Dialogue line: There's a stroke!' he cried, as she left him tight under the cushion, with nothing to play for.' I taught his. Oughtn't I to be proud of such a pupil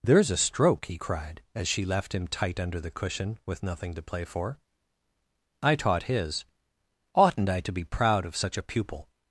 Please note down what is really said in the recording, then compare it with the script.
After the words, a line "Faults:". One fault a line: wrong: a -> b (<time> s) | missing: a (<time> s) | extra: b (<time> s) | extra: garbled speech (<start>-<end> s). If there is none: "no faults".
There's a stroke!' he cried, as she left him tight under the cushion, with nothing to play for.' I taught his. Oughtn't I to be proud of such a pupil
Faults:
no faults